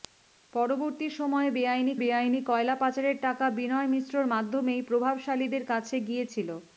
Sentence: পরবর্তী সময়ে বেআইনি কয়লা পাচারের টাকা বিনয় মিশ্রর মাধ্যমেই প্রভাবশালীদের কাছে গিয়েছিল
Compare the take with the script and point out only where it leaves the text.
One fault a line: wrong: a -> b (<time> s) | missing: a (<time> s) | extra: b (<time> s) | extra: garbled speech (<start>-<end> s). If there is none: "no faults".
extra: বেআইনি (2.0 s)